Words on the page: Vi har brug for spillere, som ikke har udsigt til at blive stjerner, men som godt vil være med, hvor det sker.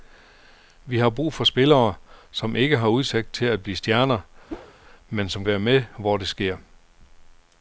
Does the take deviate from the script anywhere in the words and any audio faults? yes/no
yes